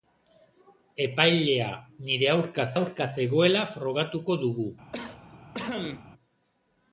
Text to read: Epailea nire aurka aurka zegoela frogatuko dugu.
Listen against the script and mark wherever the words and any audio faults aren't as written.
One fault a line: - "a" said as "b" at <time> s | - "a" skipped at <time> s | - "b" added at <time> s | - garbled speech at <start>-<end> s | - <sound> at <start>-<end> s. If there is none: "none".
- cough at 4.9-6.1 s